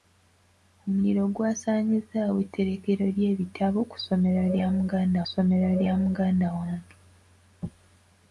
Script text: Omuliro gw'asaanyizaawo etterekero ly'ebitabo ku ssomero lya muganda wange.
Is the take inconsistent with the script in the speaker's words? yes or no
yes